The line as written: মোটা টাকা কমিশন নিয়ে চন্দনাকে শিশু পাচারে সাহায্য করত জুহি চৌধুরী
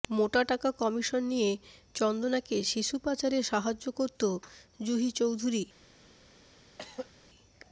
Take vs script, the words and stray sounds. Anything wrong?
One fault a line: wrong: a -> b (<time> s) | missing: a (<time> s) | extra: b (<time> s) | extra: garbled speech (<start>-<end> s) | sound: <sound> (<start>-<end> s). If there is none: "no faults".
sound: throat clearing (6.8-7.1 s)